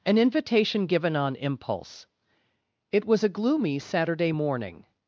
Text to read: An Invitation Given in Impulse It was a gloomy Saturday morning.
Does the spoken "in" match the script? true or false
false